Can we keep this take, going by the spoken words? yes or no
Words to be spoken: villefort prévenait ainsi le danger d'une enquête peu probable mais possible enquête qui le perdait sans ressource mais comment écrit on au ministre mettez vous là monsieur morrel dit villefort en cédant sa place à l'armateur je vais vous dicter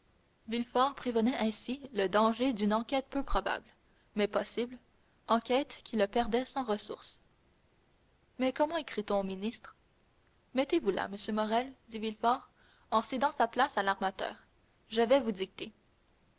yes